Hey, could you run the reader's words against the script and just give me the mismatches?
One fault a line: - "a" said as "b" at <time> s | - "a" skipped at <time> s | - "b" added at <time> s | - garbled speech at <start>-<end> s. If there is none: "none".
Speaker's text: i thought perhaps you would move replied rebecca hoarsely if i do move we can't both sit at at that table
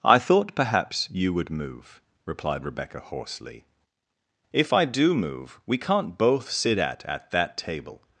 none